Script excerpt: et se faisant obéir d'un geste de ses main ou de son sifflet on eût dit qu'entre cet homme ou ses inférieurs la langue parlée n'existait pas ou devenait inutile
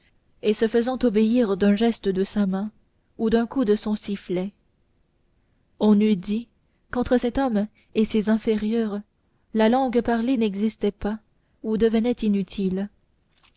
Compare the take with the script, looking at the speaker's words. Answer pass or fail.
fail